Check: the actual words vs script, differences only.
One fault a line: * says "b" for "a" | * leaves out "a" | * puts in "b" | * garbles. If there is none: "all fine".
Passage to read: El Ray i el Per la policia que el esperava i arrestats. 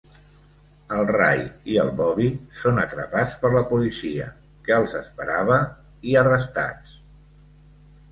* puts in "Bobby són atrapats"
* says "els" for "el"